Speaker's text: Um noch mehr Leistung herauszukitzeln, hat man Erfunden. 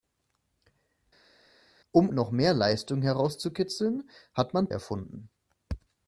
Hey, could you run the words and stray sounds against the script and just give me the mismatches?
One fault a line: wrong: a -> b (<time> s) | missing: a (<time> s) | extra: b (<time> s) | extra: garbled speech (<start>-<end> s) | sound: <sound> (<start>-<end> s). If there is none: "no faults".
no faults